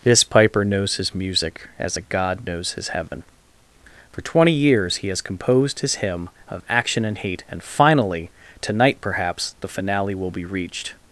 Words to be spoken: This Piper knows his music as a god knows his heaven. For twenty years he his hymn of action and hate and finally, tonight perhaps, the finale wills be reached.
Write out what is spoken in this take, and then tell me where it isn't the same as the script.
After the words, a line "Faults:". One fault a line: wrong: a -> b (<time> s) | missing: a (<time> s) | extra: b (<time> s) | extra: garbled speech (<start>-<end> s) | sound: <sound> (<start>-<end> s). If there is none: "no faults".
This Piper knows his music as a god knows his heaven. For twenty years he has composed his hymn of action and hate and finally, tonight perhaps, the finale will be reached.
Faults:
sound: dropout (3.1-3.1 s)
extra: has composed (5.1 s)
wrong: wills -> will (10.1 s)